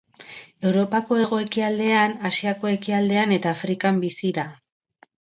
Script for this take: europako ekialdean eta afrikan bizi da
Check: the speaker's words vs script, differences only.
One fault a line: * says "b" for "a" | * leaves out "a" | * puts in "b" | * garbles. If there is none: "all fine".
* puts in "hego ekialdean asiako"